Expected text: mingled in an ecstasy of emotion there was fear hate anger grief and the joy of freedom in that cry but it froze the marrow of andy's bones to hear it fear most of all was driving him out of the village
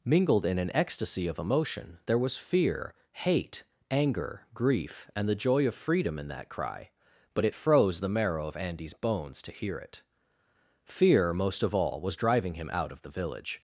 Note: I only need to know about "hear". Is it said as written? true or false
true